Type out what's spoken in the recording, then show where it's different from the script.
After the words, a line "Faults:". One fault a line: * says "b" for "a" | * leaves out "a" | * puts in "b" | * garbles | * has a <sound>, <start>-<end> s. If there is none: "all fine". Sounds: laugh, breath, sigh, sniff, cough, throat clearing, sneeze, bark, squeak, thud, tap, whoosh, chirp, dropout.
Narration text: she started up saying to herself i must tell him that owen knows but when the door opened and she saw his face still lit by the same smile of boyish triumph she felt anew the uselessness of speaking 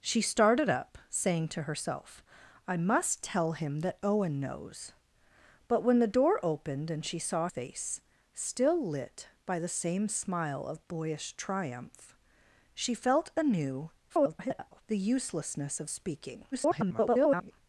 she started up saying to herself i must tell him that owen knows but when the door opened and she saw face still lit by the same smile of boyish triumph she felt anew [garbled] the uselessness of speaking [garbled]
Faults:
* leaves out "his"
* garbles
* garbles